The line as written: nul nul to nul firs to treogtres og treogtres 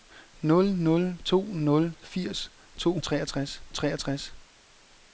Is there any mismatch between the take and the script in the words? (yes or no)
no